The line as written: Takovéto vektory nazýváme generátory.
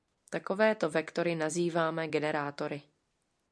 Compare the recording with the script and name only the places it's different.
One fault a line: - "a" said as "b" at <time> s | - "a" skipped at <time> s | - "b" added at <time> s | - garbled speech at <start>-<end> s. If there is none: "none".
none